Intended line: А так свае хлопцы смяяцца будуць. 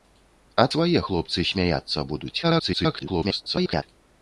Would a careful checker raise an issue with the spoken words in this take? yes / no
yes